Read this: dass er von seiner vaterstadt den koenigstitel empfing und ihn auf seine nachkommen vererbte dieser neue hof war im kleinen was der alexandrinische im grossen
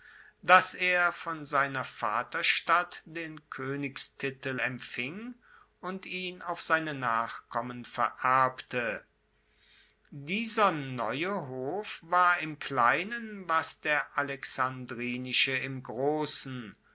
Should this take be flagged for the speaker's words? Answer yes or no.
no